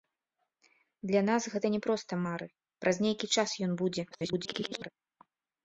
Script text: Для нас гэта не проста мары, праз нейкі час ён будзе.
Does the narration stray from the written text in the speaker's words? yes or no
yes